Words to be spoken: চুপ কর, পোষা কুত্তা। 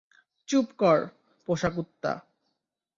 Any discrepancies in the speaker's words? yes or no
no